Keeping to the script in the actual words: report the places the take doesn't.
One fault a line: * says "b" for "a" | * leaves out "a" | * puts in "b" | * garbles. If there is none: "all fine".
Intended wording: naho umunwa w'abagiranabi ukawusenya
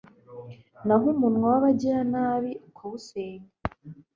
all fine